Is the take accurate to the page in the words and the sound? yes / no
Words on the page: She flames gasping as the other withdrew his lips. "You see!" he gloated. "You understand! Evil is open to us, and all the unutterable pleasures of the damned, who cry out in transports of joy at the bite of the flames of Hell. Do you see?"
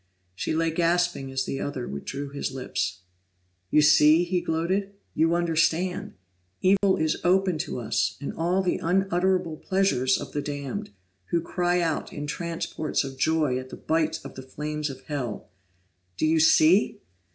no